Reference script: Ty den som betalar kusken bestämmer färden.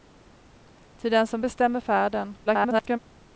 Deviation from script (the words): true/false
true